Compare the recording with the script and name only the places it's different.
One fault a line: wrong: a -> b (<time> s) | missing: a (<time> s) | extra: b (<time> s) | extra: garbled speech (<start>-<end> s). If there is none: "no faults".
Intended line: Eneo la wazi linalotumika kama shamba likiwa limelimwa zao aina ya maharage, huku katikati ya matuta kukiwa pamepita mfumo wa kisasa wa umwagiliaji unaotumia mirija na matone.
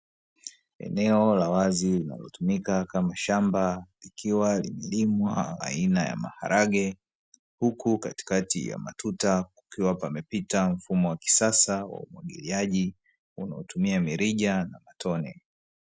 missing: zao (5.6 s)